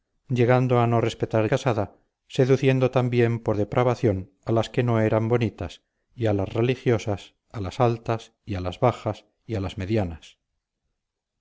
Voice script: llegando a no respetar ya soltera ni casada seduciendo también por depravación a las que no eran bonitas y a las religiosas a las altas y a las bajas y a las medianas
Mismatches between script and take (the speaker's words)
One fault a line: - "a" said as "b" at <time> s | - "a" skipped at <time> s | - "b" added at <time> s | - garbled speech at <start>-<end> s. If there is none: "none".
- "ya soltera ni" skipped at 1.5 s